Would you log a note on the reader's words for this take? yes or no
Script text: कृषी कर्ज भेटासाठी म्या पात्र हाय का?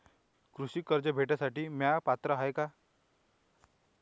no